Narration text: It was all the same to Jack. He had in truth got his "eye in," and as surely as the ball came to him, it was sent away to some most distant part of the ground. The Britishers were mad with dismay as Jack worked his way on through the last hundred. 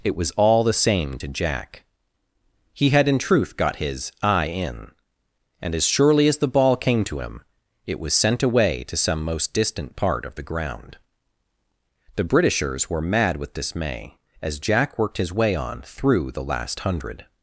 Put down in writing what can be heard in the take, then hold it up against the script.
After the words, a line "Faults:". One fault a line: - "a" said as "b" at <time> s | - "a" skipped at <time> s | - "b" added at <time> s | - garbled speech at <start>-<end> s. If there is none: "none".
It was all the same to Jack. He had in truth got his "eye in," and as surely as the ball came to him, it was sent away to some most distant part of the ground. The Britishers were mad with dismay as Jack worked his way on through the last hundred.
Faults:
none